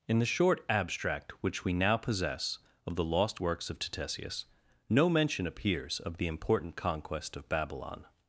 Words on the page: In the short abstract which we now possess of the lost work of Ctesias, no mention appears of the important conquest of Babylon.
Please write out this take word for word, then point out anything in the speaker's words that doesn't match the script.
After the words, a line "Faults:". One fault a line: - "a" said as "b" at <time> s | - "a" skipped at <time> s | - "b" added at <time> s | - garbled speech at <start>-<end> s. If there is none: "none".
In the short abstract which we now possess of the lost works of Ctesias, no mention appears of the important conquest of Babylon.
Faults:
- "work" said as "works" at 3.4 s